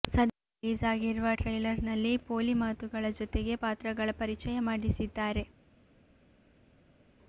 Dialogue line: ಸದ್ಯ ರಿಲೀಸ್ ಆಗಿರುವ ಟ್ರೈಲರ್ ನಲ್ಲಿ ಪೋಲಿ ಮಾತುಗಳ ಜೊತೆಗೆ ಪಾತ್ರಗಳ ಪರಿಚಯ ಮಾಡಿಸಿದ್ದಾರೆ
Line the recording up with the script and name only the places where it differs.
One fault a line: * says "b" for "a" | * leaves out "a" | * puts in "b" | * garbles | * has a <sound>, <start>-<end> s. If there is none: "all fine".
all fine